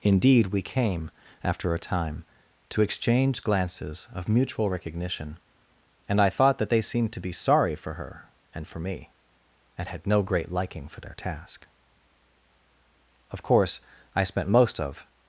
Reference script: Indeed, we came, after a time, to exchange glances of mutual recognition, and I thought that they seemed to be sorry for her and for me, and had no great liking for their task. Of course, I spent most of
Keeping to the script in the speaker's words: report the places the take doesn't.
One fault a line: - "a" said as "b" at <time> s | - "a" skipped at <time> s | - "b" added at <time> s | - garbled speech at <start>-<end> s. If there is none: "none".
none